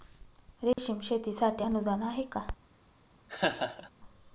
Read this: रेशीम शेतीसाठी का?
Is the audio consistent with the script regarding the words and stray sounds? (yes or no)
no